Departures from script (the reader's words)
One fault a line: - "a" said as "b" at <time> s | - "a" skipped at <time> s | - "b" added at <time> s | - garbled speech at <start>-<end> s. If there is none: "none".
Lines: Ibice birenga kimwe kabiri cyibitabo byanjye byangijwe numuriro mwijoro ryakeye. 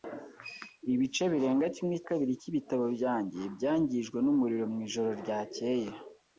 none